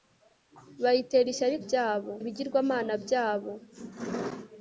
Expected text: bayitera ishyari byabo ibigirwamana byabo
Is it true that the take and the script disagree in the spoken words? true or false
false